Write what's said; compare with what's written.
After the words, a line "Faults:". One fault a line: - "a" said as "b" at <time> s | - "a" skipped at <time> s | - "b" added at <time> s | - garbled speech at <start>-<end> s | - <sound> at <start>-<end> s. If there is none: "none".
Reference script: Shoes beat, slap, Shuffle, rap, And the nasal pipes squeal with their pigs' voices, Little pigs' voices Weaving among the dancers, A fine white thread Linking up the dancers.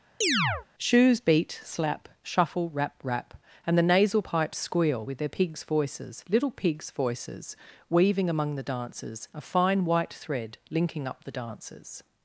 Shoes beat, slap, Shuffle, rap rap, And the nasal pipes squeal with their pigs' voices, Little pigs' voices Weaving among the dancers, A fine white thread Linking up the dancers.
Faults:
- chirp at 0.2-0.7 s
- "rap" added at 3.0 s